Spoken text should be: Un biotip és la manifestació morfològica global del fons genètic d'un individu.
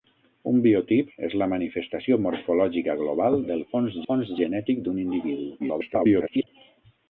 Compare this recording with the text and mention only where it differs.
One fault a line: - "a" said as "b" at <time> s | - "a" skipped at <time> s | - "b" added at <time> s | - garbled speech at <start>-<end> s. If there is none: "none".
- "fons" added at 4.1 s
- garbled speech at 5.6-6.5 s